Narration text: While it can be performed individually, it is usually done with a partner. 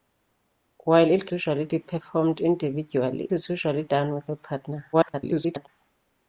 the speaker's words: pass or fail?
fail